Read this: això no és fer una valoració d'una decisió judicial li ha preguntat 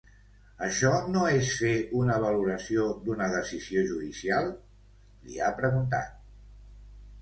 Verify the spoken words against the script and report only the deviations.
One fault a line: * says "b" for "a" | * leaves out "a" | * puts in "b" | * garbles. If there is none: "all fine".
all fine